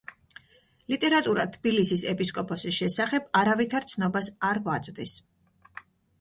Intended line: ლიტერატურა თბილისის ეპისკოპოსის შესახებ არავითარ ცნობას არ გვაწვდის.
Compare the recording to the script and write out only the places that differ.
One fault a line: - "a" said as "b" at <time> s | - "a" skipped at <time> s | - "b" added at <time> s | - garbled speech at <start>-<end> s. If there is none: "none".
none